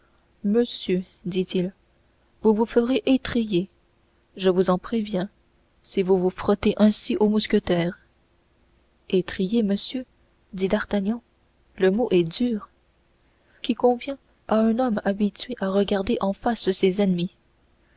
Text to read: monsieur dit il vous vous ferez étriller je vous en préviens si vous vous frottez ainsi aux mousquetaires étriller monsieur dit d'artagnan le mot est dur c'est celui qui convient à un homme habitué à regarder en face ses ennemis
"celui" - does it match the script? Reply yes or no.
no